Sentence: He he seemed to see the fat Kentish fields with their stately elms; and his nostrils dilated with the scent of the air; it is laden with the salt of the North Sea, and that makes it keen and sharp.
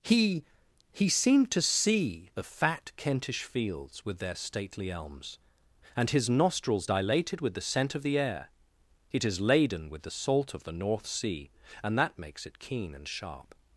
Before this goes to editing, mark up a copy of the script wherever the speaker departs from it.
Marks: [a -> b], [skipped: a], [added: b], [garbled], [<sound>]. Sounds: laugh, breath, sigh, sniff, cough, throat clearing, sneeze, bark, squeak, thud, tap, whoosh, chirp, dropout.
He he seemed to see the fat Kentish fields with their stately elms; and his nostrils dilated with the scent of the air; it is laden with the salt of the North Sea, and that makes it keen and sharp.